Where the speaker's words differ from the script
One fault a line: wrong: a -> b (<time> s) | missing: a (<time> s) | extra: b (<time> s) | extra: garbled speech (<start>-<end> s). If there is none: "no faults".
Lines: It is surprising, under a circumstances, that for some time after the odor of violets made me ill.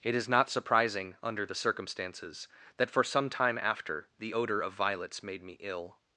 extra: not (0.3 s)
wrong: a -> the (1.4 s)